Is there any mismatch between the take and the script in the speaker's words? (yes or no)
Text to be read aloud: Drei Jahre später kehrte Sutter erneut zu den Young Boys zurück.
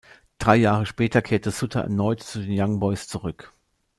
no